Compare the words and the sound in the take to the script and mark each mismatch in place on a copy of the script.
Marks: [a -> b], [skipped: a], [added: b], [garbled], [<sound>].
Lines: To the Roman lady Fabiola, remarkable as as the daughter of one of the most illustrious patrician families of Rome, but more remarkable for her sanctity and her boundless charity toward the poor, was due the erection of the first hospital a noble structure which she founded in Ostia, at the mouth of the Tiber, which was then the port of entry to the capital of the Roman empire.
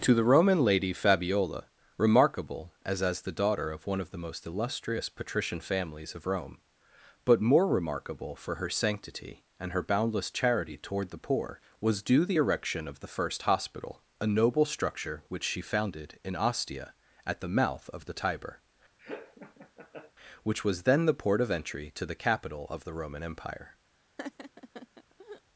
To the Roman lady Fabiola, remarkable as as the daughter of one of the most illustrious patrician families of Rome, but more remarkable for her sanctity and her boundless charity toward the poor, was due the erection of the first hospital a noble structure which she founded in Ostia, at the mouth of the Tiber, [laugh] which was then the port of entry to the capital of the Roman empire. [laugh]